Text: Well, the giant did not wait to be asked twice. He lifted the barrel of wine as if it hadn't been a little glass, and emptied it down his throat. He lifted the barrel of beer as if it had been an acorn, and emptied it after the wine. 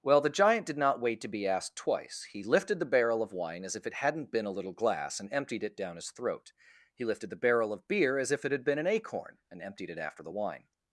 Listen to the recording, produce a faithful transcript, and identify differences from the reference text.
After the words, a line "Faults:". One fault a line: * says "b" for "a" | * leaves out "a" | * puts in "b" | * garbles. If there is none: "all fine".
Well, the giant did not wait to be asked twice. He lifted the barrel of wine as if it hadn't been a little glass, and emptied it down his throat. He lifted the barrel of beer as if it had been an acorn, and emptied it after the wine.
Faults:
all fine